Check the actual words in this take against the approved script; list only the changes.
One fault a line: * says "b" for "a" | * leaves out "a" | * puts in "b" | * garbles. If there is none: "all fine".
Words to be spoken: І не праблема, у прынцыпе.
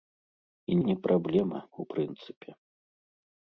all fine